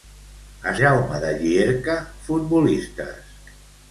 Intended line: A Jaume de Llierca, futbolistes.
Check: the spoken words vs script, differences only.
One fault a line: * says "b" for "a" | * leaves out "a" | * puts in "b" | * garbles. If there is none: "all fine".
all fine